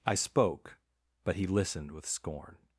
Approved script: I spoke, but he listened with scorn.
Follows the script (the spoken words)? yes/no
yes